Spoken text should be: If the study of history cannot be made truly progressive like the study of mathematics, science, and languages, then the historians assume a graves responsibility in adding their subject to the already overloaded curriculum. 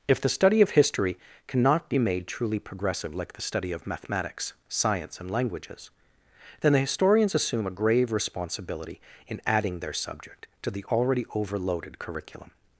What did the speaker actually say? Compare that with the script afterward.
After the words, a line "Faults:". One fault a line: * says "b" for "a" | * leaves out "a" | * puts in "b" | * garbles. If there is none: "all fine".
If the study of history cannot be made truly progressive like the study of mathematics, science, and languages, then the historians assume a grave responsibility in adding their subject to the already overloaded curriculum.
Faults:
* says "grave" for "graves"